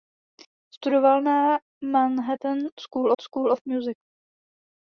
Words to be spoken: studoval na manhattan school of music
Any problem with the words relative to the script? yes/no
yes